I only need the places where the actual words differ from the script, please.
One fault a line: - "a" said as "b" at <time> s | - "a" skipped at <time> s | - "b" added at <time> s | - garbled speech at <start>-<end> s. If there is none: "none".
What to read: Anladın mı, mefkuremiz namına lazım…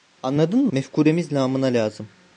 - "mı" skipped at 0.7 s